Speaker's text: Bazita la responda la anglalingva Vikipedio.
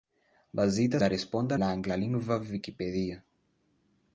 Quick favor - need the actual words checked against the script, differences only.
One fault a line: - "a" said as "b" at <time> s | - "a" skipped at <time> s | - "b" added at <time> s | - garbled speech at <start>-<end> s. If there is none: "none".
none